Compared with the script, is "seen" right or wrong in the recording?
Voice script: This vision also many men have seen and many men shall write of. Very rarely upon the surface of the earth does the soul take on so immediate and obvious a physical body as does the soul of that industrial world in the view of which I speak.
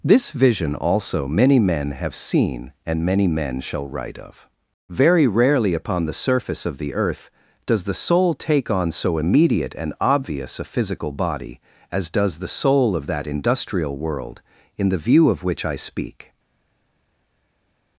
right